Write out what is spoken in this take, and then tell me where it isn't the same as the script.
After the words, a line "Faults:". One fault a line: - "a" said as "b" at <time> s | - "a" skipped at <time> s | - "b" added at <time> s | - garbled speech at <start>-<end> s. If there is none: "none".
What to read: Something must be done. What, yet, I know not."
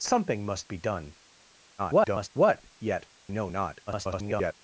Something must be done. [garbled] What, yet, know not." [garbled]
Faults:
- garbled speech at 1.8-2.3 s
- "I" skipped at 3.1 s
- garbled speech at 3.9-4.5 s